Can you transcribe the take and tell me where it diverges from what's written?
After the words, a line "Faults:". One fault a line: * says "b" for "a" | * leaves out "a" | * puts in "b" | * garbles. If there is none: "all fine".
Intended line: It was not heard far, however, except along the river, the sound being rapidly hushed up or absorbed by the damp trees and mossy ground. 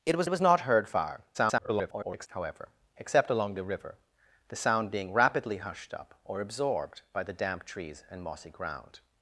It was was not heard far, [garbled] however, except along the river, the sound being rapidly hushed up or absorbed by the damp trees and mossy ground.
Faults:
* puts in "was"
* garbles